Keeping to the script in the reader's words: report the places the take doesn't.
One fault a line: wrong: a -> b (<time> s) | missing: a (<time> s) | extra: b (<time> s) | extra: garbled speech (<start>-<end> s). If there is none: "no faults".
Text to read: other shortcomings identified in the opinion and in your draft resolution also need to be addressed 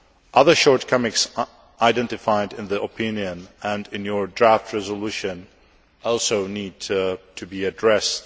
no faults